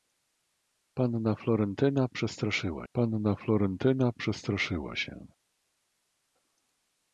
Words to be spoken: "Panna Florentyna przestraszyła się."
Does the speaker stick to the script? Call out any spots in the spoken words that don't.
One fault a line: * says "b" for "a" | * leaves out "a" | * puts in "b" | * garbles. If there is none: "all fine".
* puts in "panna Florentyna przestraszyła"